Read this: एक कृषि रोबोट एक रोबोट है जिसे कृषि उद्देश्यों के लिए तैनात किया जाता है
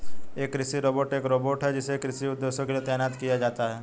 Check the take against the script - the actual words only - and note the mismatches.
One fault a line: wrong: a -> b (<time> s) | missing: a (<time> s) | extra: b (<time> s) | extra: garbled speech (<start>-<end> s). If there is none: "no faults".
no faults